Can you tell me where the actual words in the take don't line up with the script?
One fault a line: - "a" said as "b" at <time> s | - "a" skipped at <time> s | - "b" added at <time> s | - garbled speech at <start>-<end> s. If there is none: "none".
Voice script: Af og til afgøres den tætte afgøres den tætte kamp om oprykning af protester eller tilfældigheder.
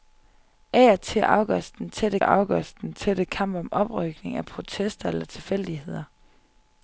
none